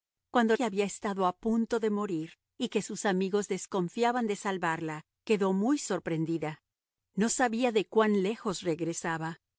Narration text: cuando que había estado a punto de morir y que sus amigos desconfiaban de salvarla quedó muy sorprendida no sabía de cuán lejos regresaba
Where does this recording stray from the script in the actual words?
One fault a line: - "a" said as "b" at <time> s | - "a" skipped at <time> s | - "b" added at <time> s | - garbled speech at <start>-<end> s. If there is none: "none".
none